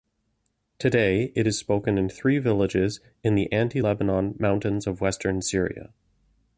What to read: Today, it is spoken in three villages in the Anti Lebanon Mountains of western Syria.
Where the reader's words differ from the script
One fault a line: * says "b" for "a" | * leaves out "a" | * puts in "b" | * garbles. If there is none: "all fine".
all fine